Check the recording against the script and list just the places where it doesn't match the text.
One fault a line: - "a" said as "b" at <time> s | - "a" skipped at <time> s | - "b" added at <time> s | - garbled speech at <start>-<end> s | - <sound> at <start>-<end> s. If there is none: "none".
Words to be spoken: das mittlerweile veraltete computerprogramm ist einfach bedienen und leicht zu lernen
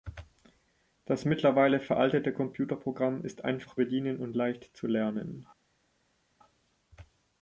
none